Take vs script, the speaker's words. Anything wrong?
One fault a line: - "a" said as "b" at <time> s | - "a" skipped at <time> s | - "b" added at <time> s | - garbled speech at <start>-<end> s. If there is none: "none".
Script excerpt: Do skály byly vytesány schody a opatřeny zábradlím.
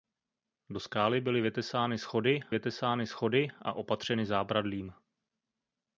- "vytesány schody" added at 2.5 s